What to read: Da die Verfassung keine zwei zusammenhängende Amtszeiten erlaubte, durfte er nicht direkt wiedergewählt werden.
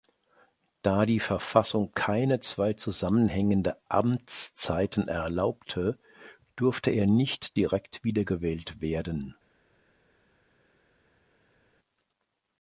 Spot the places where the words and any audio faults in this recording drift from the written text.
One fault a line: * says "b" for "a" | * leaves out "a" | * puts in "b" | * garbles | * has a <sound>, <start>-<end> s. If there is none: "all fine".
all fine